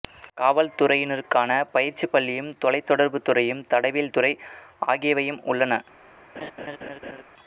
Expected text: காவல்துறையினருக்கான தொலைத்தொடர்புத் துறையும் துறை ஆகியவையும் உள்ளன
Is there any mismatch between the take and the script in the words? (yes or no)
yes